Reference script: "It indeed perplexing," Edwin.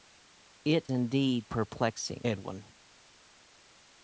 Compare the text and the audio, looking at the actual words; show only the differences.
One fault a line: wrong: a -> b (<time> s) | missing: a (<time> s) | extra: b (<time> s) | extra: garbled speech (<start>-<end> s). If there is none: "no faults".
no faults